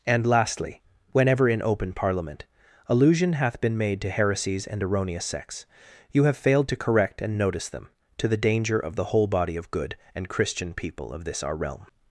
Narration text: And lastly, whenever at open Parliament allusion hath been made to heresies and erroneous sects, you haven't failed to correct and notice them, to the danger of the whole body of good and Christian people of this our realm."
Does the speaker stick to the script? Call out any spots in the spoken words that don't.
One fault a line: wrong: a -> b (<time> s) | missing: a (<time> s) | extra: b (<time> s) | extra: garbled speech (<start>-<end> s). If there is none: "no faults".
wrong: at -> in (1.5 s)
wrong: haven't -> have (6.2 s)